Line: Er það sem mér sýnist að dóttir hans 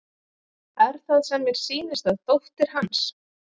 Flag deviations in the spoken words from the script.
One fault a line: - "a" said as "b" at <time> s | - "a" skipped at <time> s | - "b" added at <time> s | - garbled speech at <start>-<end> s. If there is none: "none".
none